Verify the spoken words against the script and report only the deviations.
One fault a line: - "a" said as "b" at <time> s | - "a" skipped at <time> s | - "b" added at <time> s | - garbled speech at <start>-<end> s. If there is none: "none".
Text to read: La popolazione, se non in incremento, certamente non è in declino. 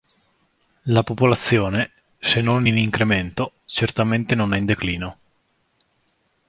none